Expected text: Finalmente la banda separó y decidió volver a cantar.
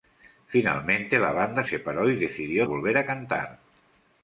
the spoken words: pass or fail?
pass